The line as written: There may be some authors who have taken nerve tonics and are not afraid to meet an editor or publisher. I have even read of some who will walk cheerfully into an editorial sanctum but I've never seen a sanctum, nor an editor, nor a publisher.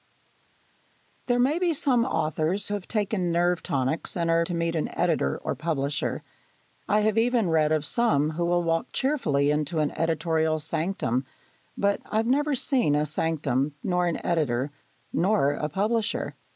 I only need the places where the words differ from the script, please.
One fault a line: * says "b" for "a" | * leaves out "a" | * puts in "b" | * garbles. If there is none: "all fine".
* leaves out "who"
* leaves out "not afraid"